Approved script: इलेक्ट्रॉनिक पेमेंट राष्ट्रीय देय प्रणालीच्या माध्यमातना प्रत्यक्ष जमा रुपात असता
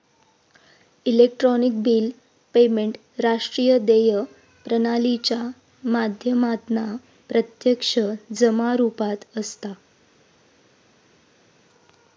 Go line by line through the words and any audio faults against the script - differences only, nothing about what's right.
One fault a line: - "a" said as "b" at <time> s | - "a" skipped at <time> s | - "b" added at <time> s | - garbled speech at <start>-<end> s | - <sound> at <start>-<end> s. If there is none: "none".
- "बिल" added at 1.8 s